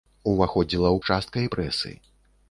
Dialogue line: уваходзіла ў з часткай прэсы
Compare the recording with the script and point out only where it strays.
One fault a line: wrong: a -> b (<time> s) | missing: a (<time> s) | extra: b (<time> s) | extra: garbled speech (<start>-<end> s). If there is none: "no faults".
no faults